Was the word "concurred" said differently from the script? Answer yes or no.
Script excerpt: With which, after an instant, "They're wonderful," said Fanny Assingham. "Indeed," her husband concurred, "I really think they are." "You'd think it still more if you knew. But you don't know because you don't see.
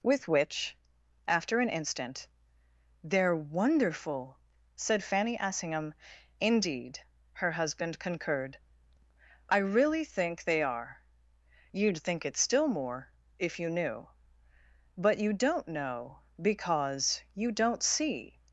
no